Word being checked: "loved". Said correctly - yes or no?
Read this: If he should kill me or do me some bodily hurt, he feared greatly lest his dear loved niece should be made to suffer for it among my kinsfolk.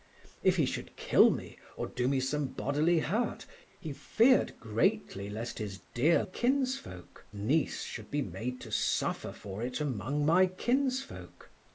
no